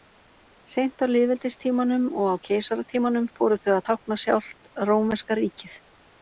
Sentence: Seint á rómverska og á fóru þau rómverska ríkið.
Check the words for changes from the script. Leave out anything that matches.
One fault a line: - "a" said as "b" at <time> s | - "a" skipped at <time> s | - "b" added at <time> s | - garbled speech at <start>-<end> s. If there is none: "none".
- "rómverska" said as "lýðveldistímanum" at 1.1 s
- "keisaratímanum" added at 2.5 s
- "að tákna sjálft" added at 3.8 s